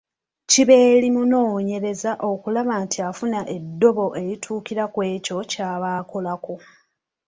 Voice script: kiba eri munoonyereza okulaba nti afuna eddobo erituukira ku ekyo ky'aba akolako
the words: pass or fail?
pass